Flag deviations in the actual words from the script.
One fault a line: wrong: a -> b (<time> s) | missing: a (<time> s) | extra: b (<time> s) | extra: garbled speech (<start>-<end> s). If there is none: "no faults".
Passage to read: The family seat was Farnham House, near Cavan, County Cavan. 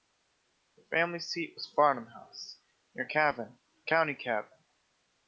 no faults